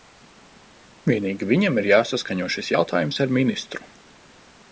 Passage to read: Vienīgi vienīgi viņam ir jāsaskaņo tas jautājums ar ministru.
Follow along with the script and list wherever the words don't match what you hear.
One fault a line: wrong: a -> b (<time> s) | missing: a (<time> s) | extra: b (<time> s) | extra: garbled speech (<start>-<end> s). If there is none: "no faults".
missing: vienīgi (1.5 s)
wrong: tas -> šis (2.6 s)